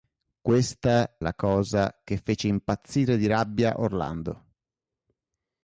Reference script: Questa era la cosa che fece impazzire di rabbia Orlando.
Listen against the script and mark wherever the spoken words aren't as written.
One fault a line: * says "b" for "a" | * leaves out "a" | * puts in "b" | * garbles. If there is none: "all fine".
* leaves out "era"